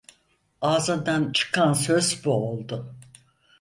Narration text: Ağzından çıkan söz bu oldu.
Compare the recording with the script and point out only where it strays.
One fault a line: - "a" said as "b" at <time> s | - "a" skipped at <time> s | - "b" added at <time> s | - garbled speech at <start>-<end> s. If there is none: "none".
none